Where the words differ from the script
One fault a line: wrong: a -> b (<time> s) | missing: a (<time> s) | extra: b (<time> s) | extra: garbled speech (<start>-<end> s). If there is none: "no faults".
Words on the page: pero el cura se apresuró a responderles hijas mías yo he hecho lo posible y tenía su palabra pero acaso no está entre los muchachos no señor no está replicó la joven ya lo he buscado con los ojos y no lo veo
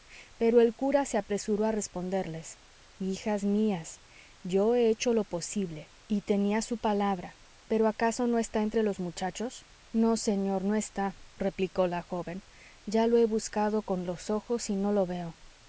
no faults